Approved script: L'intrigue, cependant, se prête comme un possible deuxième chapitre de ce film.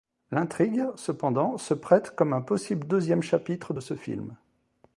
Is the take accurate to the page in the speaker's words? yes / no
yes